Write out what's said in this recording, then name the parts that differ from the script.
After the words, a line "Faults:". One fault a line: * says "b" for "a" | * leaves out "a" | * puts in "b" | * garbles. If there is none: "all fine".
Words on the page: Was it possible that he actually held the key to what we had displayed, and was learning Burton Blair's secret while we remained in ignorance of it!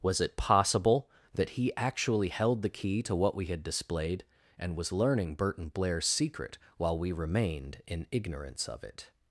Was it possible that he actually held the key to what we had displayed, and was learning Burton Blair's secret while we remained in ignorance of it!
Faults:
all fine